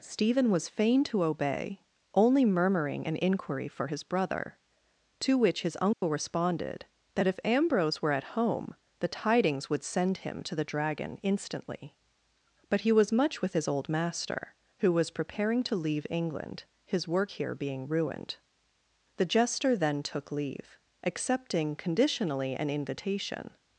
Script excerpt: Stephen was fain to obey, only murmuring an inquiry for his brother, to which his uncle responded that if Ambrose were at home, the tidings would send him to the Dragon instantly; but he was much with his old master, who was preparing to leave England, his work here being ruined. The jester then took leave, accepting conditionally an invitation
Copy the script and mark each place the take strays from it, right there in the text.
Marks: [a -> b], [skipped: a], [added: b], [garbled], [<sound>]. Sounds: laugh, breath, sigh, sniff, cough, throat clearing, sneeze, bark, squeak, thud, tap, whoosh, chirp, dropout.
Stephen was fain to obey, only murmuring an inquiry for his brother, to which his uncle [dropout] responded that if Ambrose were at home, the tidings would send him to the Dragon instantly; but he was much with his old master, who was preparing to leave England, his work here being ruined. The jester then took leave, accepting conditionally an invitation